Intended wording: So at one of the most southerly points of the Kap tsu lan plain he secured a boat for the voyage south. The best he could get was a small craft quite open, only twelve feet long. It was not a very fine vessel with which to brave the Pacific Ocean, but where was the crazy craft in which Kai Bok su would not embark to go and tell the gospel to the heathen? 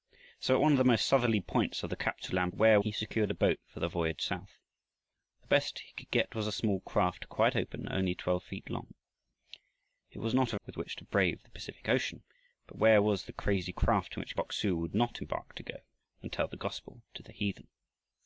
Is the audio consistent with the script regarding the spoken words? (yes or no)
no